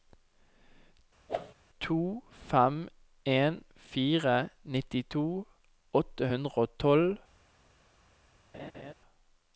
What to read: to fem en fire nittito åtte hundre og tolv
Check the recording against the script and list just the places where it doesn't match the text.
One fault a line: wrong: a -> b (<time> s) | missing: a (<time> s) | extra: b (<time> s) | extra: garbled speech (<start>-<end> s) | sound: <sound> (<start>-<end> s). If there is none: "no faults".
sound: whoosh (1.3-1.5 s)
sound: laugh (8.5-8.9 s)